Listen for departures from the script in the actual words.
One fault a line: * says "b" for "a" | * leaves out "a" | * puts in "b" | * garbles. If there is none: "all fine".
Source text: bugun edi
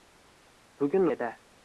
all fine